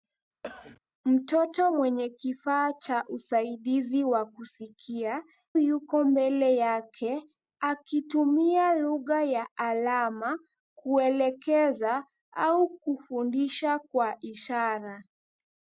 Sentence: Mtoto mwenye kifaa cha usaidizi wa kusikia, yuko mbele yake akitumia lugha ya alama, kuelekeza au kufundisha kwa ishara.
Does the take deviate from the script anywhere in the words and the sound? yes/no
yes